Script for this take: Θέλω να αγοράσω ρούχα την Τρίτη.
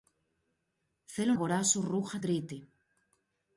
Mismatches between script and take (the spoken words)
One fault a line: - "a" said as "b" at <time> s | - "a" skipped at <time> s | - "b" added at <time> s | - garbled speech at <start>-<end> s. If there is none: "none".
- "να" skipped at 1.3 s
- "την" skipped at 2.2 s